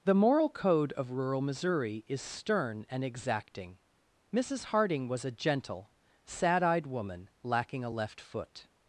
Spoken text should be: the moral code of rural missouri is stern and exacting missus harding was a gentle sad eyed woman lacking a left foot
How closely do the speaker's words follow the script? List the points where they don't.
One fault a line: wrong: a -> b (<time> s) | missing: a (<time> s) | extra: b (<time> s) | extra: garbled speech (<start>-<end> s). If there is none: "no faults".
no faults